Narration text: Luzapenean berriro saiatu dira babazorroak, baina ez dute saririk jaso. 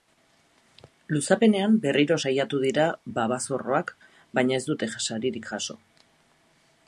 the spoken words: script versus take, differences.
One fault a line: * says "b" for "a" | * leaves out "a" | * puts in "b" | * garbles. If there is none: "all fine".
all fine